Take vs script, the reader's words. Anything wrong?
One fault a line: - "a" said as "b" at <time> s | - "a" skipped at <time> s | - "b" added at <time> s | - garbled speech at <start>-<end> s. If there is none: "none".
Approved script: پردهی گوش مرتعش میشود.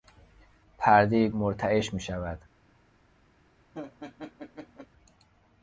- "گوش" skipped at 1.3 s